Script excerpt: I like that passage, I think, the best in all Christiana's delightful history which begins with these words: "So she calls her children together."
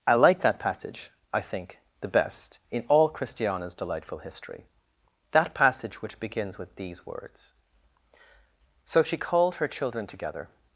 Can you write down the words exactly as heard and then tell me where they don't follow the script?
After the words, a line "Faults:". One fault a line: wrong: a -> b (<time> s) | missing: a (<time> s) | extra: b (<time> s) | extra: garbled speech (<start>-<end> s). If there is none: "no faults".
I like that passage, I think, the best in all Christiana's delightful history that passage which begins with these words: "So she called her children together."
Faults:
extra: that passage (5.3 s)
wrong: calls -> called (9.2 s)